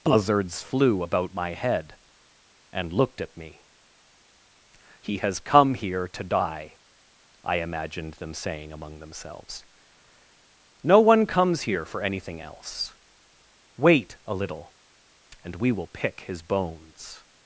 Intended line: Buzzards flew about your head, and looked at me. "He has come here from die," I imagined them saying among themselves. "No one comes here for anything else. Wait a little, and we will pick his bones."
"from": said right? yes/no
no